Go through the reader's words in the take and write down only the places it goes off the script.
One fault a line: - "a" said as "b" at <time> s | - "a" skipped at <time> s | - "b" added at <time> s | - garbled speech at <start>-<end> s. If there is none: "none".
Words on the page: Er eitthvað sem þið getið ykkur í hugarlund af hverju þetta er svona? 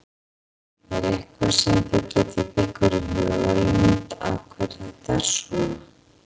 none